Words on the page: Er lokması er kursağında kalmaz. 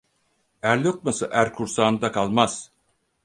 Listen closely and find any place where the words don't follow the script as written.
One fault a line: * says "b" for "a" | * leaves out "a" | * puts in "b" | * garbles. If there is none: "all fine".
all fine